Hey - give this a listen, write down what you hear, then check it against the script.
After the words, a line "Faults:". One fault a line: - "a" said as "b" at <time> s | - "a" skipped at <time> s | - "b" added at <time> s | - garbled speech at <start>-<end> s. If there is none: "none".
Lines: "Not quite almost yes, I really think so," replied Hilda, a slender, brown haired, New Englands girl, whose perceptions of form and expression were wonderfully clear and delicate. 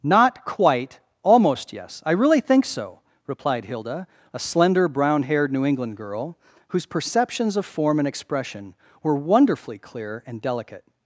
"Not quite almost yes, I really think so," replied Hilda, a slender, brown haired, New England girl, whose perceptions of form and expression were wonderfully clear and delicate.
Faults:
- "Englands" said as "England" at 5.7 s